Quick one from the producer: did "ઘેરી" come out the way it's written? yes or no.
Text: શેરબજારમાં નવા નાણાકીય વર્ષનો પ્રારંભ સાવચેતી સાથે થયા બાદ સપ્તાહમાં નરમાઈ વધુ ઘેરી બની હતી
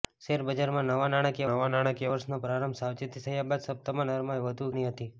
no